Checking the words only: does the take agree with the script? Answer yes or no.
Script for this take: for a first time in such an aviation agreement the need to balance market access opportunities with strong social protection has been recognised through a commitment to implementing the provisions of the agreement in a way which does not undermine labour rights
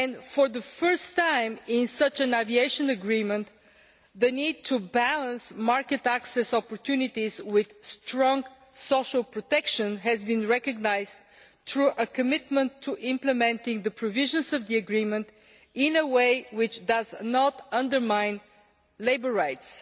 no